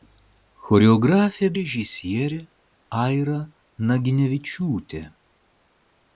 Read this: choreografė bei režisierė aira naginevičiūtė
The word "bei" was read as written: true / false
false